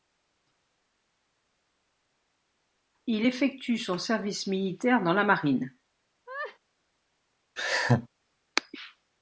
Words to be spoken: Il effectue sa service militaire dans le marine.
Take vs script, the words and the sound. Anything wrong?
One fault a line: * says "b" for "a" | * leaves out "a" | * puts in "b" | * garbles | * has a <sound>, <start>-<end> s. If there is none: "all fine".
* says "son" for "sa"
* says "la" for "le"
* has a laugh, 6.3-6.6 s
* has a laugh, 7.6-8.1 s